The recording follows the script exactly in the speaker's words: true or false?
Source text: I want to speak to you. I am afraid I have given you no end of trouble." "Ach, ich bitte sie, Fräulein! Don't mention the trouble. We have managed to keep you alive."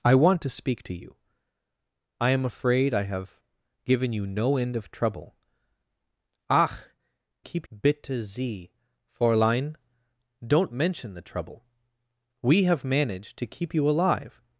false